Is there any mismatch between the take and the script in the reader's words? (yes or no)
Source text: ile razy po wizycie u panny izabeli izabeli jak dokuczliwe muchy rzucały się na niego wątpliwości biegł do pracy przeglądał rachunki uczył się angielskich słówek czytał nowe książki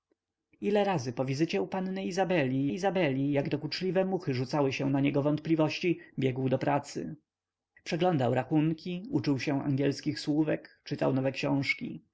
no